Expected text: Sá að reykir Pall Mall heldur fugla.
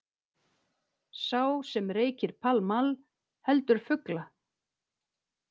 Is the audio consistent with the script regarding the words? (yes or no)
no